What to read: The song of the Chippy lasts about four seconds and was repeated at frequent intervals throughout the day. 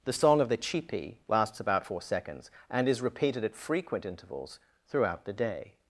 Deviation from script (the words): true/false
true